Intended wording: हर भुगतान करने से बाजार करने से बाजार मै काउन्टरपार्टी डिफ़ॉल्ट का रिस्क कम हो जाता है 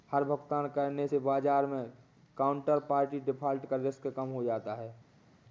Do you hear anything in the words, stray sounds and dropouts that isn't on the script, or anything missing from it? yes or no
yes